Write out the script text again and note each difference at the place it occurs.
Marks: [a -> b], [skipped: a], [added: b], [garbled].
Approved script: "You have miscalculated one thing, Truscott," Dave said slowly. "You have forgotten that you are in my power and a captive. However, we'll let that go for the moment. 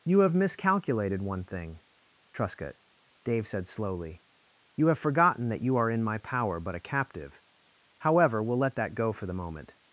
"You have miscalculated one thing, Truscott," Dave said slowly. "You have forgotten that you are in my power [and -> but] a captive. However, we'll let that go for the moment.